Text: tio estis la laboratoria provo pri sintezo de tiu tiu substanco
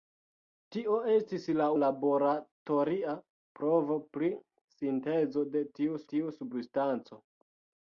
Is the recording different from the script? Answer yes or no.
no